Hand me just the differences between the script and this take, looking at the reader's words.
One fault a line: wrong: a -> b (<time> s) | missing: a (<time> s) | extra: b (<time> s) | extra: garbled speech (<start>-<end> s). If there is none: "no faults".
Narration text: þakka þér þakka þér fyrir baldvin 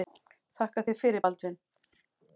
missing: þakka þér (1.0 s)